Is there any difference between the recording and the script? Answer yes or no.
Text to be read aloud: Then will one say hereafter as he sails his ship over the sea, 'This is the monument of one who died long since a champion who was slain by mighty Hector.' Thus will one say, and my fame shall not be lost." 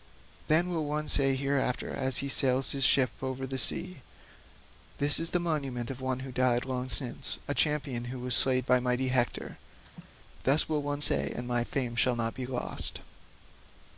no